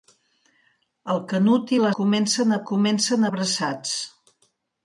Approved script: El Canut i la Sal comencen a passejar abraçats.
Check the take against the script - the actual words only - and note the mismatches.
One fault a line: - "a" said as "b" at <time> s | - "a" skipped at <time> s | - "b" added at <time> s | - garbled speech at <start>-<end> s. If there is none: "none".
- "Sal" skipped at 1.9 s
- "passejar" said as "comencen" at 2.7 s